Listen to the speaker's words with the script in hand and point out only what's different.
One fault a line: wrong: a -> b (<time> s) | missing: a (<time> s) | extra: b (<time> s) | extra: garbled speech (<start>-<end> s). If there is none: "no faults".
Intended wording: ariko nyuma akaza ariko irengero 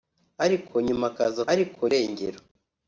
no faults